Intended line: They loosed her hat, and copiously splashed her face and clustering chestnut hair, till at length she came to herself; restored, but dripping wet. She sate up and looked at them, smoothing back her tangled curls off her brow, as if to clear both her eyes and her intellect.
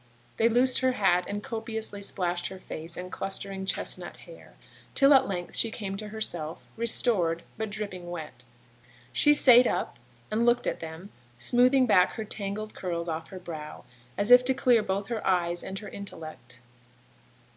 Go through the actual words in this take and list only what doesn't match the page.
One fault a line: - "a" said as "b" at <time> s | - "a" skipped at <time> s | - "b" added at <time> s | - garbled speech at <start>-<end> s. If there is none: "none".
none